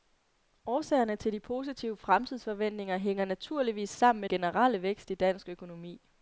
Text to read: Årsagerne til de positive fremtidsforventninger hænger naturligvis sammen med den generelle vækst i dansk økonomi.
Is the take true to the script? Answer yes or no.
no